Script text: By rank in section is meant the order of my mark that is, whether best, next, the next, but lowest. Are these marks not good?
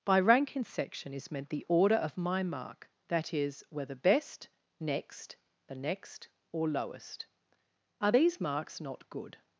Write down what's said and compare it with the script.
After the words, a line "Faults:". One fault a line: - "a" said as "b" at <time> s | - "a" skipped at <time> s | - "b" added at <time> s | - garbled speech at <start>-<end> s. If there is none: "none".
By rank in section is meant the order of my mark that is, whether best, next, the next, or lowest. Are these marks not good?
Faults:
- "but" said as "or" at 6.5 s